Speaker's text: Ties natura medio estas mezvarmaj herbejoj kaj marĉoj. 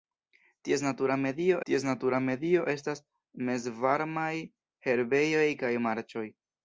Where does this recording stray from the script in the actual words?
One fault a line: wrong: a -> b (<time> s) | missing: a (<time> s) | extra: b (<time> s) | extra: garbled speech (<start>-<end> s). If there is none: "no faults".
extra: ties natura medio (1.7 s)